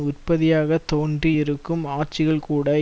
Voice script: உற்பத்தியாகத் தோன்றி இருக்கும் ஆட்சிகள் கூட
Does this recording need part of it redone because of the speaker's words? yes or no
no